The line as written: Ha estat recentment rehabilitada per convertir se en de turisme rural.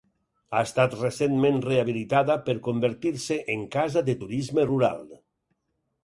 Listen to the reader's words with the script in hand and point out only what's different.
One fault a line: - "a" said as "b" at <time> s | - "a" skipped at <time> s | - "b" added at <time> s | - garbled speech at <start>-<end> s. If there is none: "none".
- "casa" added at 3.7 s